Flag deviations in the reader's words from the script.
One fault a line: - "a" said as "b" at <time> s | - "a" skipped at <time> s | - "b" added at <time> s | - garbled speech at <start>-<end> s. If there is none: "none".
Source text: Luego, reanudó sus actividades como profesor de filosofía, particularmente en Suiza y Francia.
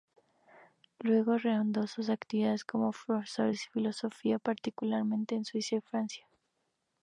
none